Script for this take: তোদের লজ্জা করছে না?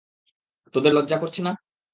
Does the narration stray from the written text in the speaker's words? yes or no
no